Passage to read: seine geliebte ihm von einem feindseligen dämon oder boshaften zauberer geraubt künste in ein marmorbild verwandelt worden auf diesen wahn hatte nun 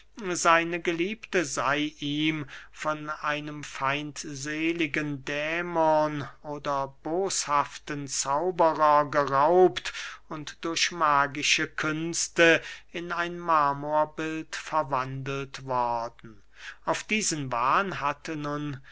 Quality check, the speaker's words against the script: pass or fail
fail